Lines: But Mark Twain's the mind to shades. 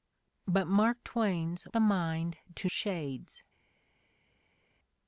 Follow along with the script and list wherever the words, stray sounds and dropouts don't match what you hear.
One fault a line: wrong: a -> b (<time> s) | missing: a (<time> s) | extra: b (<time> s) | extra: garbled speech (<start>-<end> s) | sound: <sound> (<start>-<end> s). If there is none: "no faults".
no faults